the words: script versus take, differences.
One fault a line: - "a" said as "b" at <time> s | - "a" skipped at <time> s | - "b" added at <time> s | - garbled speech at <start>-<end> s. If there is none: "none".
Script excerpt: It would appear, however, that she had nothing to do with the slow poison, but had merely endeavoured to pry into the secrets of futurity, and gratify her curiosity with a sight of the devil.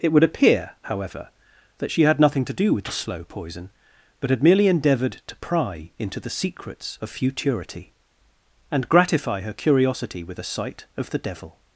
none